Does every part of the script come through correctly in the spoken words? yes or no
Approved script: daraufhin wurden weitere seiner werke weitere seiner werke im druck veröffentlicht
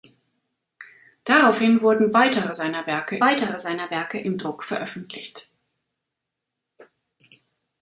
yes